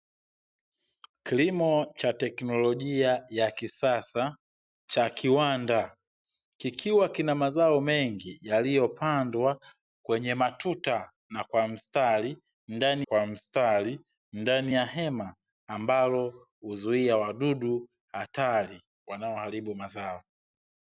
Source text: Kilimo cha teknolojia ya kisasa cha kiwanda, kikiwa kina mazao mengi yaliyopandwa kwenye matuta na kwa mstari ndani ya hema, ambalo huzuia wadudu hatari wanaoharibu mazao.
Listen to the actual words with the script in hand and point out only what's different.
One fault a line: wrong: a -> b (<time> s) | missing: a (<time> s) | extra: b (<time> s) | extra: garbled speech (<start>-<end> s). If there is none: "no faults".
extra: kwa mstari ndani (13.0 s)